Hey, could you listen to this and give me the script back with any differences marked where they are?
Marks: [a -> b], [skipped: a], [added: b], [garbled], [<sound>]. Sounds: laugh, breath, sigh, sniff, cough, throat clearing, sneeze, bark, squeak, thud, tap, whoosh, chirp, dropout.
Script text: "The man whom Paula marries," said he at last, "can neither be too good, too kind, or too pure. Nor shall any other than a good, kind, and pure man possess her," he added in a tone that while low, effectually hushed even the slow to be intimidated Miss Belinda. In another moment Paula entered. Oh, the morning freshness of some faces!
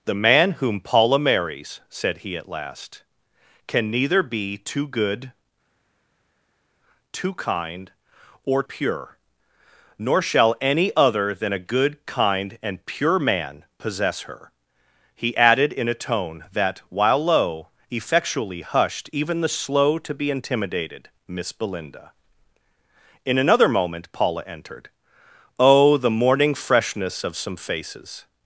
"The man whom Paula marries," said he at last, "can neither be too good, too kind, or [skipped: too] pure. Nor shall any other than a good, kind, and pure man possess her," he added in a tone that while low, effectually hushed even the slow to be intimidated Miss Belinda. In another moment Paula entered. Oh, the morning freshness of some faces!